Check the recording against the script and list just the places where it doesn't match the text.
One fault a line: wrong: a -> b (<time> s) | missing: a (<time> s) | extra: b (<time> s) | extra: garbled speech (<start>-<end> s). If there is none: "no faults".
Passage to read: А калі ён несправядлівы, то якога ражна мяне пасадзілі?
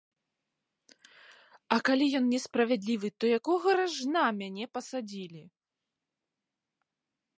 no faults